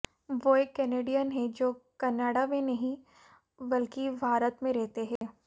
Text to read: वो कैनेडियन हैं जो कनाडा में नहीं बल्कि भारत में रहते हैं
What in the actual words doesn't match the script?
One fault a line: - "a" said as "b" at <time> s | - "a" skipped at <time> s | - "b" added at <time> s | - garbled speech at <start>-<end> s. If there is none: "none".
- "एक" added at 0.6 s